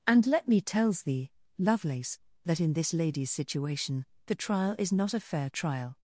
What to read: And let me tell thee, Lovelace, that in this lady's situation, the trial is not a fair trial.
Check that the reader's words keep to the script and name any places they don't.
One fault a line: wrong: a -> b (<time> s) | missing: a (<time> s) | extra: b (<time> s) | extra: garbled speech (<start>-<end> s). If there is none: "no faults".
wrong: tell -> tells (0.6 s)